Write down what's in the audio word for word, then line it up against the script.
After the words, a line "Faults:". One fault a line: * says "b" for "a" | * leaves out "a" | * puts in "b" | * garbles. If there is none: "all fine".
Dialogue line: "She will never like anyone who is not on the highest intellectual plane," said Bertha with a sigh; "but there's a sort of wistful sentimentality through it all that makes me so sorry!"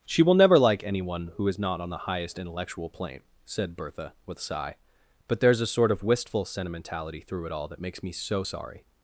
"She will never like anyone who is not on the highest intellectual plane," said Bertha with a sigh; "but there's a sort of wistful sentimentality through it all that makes me so sorry!"
Faults:
all fine